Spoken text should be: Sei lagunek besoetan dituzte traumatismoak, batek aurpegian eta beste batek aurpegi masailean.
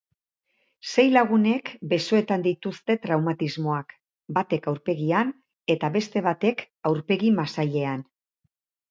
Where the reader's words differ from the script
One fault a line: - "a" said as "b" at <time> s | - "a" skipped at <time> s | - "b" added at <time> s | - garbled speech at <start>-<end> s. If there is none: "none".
none